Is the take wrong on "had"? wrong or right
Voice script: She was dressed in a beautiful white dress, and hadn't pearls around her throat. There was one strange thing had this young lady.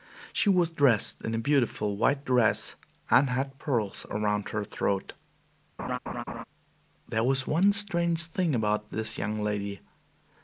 wrong